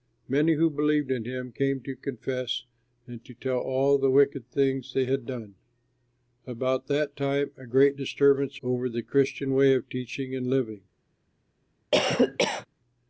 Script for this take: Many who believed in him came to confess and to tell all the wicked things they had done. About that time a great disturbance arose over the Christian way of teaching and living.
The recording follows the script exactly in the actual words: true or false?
false